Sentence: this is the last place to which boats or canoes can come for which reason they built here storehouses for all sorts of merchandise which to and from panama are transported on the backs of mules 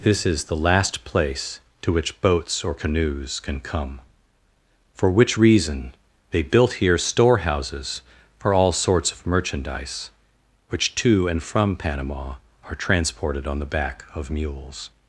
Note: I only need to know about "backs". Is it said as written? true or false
false